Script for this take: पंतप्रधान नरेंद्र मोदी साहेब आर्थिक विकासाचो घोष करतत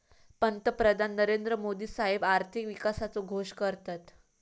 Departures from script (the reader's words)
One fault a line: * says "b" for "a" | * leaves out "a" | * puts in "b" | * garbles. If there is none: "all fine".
all fine